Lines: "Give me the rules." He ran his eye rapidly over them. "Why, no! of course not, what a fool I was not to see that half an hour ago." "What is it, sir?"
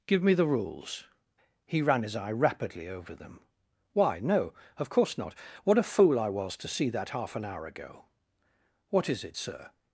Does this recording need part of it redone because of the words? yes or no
yes